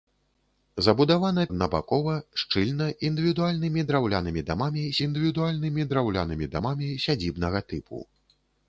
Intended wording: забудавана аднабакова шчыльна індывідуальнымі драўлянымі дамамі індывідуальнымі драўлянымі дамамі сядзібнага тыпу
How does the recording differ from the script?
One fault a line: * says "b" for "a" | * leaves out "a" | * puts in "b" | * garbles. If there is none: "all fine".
all fine